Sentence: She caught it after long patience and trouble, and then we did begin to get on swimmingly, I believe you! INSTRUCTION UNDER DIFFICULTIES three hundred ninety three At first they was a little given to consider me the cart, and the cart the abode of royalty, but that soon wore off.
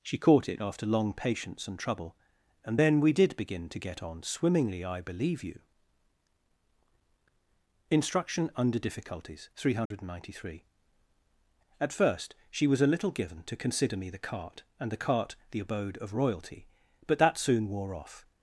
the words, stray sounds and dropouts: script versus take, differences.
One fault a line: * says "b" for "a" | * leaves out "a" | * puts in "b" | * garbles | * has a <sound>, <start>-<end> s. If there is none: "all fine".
* has a dropout, 9.9-9.9 s
* says "she" for "they"